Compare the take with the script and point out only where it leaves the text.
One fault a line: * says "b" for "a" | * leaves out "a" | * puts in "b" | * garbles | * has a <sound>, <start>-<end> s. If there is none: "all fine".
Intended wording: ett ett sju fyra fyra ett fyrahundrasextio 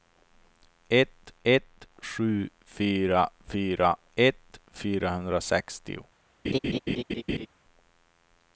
* has a laugh, 6.4-7.5 s